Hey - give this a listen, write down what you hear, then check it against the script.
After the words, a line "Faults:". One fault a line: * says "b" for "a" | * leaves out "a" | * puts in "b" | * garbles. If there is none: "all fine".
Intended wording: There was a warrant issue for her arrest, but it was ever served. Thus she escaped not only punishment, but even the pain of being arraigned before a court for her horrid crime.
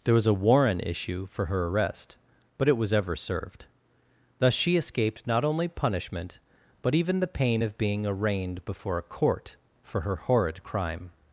There was a warrant issue for her arrest, but it was ever served. Thus she escaped not only punishment, but even the pain of being arraigned before a court for her horrid crime.
Faults:
all fine